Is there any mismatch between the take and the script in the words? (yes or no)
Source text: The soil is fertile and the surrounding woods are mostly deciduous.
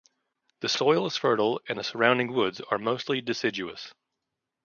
no